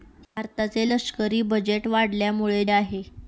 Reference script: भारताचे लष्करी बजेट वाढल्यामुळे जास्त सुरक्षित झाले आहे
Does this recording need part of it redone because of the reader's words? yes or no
yes